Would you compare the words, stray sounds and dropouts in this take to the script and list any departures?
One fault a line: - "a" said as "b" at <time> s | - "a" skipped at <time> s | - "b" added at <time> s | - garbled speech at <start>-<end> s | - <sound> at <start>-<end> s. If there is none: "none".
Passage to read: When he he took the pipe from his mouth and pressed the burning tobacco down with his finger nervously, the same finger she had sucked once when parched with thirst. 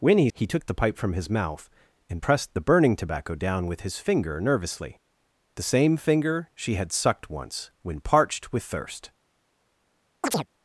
- chirp at 10.2-10.5 s